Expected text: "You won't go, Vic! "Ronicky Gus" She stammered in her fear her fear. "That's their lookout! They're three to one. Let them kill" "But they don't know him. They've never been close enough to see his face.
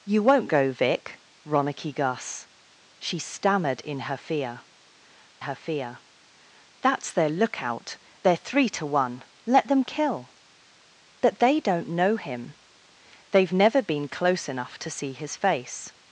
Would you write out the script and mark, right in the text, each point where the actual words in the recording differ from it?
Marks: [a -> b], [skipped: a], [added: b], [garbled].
"You won't go, Vic! "Ronicky Gus" She stammered in her fear her fear. "That's their lookout! They're three to one. Let them kill" "But they don't know him. They've never been close enough to see his face.